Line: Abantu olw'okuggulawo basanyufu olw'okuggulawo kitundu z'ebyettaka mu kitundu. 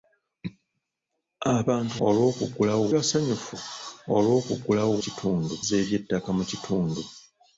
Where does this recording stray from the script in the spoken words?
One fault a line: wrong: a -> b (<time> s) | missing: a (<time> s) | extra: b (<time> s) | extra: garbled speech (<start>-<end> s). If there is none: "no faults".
no faults